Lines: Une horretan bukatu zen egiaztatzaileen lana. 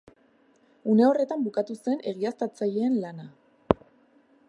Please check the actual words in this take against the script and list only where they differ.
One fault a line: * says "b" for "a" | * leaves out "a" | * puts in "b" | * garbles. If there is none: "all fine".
all fine